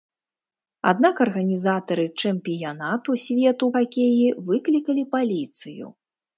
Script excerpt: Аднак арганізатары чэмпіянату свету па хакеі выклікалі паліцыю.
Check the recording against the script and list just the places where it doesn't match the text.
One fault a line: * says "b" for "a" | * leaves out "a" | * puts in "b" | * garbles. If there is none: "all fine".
* leaves out "па"